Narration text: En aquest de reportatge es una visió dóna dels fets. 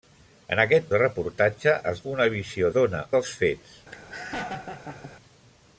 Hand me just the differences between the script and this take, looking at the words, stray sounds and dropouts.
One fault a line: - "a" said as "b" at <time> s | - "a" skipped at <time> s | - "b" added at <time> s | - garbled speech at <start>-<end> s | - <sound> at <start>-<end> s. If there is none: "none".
- laugh at 3.9-5.1 s